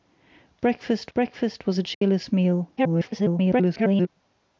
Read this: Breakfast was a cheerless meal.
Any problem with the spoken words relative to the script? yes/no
yes